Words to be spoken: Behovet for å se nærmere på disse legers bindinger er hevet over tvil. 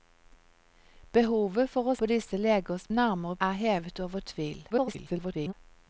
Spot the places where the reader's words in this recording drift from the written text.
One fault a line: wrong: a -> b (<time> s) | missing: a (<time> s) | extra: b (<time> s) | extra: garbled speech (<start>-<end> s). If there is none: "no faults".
missing: se nærmere (1.9 s)
wrong: bindinger -> nærmere (2.9 s)
extra: garbled speech (4.7-5.5 s)